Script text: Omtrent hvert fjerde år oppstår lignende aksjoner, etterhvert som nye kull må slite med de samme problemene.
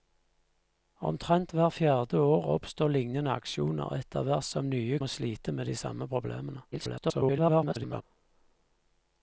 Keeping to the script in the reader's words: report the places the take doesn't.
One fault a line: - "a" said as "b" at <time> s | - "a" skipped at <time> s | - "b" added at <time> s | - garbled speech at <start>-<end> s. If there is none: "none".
- "kull" skipped at 5.0 s
- garbled speech at 6.7-8.0 s